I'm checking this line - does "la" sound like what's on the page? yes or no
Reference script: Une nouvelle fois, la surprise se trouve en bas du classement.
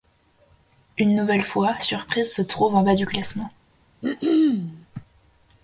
no